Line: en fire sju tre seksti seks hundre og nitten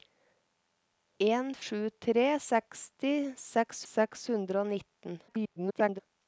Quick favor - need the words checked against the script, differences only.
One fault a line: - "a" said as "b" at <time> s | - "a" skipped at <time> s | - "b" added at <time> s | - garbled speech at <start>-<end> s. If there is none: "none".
- "fire" skipped at 1.5 s
- "seks" added at 3.9 s
- garbled speech at 5.3-6.0 s